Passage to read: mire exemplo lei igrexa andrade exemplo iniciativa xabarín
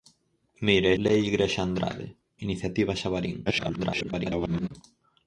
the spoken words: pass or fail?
fail